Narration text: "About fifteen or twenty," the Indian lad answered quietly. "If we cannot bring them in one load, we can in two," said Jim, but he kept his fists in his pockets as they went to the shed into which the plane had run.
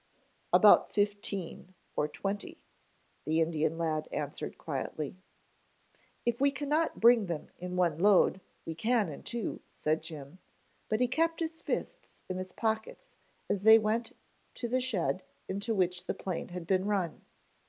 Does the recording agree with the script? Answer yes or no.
no